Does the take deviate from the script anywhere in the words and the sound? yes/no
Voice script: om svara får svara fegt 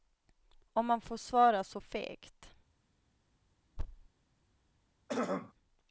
yes